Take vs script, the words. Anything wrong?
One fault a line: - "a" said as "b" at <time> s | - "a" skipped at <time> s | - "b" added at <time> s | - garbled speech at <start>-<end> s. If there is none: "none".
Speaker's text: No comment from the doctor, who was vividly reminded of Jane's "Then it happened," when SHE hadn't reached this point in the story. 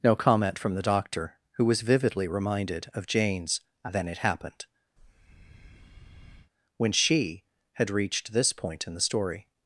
- "hadn't" said as "had" at 7.7 s